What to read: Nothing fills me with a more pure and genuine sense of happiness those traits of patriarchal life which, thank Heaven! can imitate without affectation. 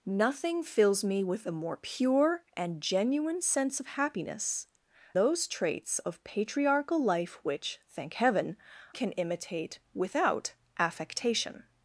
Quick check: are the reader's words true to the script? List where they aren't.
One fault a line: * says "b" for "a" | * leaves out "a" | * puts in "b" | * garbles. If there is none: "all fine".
all fine